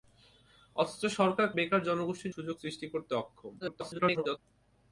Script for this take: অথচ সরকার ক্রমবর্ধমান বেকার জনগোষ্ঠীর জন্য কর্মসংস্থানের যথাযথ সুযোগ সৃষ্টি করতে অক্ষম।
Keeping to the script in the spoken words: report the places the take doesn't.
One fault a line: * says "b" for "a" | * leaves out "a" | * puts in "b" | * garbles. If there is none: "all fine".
* leaves out "ক্রমবর্ধমান"
* leaves out "জন্য কর্মসংস্থানের যথাযথ"
* garbles